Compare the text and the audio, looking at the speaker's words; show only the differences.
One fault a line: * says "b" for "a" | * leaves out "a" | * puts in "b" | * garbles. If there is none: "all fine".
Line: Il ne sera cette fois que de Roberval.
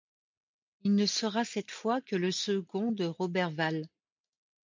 * puts in "le second"